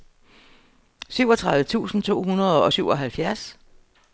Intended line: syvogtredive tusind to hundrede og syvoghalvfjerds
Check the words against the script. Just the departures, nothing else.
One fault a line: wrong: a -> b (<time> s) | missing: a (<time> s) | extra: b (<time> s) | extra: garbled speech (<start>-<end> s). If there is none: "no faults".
no faults